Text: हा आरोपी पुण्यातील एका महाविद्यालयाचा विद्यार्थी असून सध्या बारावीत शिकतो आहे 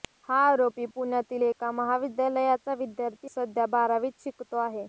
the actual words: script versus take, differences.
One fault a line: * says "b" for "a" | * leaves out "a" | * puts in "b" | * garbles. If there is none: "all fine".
* leaves out "असून"